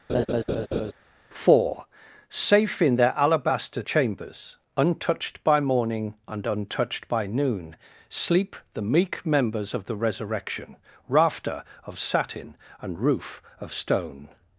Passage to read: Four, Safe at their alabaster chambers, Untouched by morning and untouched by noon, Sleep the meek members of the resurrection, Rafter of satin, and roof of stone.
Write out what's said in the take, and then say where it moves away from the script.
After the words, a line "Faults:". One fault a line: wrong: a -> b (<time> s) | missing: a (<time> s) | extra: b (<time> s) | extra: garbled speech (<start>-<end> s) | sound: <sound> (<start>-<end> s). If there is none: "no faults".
Four, Safe in their alabaster chambers, Untouched by morning and untouched by noon, Sleep the meek members of the resurrection, Rafter of satin, and roof of stone.
Faults:
sound: laugh (0.1-0.9 s)
wrong: at -> in (2.8 s)